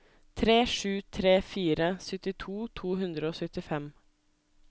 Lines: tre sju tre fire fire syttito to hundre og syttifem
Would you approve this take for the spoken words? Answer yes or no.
no